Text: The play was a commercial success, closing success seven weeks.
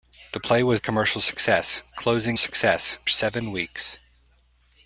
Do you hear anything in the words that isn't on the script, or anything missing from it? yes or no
no